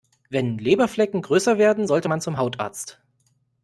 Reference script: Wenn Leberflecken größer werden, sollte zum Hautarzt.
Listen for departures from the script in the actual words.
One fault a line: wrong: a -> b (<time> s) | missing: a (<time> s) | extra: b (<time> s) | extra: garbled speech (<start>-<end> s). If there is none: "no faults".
extra: man (2.1 s)